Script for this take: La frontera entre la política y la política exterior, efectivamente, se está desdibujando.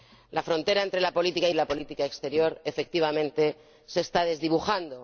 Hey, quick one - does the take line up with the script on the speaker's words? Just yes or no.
yes